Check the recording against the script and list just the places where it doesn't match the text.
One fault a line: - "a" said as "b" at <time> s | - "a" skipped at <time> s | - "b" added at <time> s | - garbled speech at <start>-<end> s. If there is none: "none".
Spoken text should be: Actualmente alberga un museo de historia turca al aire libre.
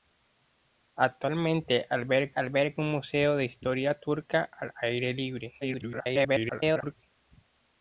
- "alberga" added at 2.4 s
- garbled speech at 5.6-7.0 s